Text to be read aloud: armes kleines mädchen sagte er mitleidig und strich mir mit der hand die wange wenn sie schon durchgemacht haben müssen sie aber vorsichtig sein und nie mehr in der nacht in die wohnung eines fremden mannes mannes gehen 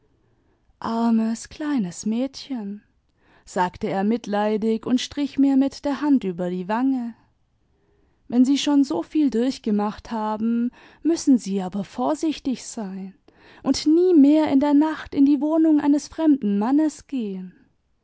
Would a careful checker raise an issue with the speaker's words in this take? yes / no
yes